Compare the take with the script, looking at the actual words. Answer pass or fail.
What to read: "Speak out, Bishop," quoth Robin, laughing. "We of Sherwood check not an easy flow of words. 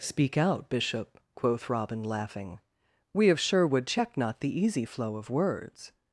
fail